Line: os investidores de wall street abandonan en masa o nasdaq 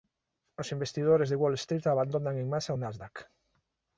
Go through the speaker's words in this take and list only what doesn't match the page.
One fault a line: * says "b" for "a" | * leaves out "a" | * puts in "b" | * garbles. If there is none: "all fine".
all fine